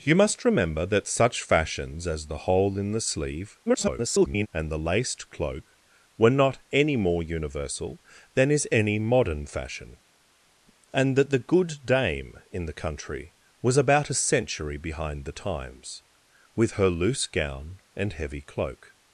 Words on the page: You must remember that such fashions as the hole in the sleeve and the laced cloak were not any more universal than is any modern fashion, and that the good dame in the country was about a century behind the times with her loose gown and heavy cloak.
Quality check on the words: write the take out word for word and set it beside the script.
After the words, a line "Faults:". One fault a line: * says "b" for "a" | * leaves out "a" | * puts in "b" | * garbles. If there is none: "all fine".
You must remember that such fashions as the hole in the sleeve [garbled] and the laced cloak were not any more universal than is any modern fashion, and that the good dame in the country was about a century behind the times with her loose gown and heavy cloak.
Faults:
* garbles